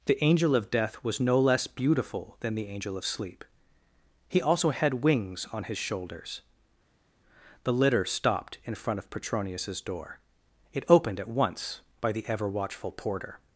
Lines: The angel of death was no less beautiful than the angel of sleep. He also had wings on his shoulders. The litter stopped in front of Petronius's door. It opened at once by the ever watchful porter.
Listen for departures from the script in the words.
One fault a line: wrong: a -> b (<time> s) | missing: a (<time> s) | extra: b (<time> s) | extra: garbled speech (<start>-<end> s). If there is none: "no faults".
no faults